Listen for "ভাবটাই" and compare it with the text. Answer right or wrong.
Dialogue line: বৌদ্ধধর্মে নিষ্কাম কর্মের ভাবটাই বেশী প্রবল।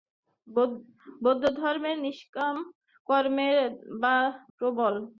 wrong